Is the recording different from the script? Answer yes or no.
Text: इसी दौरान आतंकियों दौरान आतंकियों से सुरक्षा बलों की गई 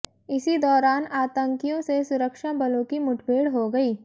yes